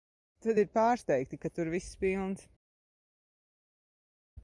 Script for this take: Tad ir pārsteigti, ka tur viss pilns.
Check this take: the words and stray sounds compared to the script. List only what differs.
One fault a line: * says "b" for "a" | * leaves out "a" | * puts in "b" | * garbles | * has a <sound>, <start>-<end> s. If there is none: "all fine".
all fine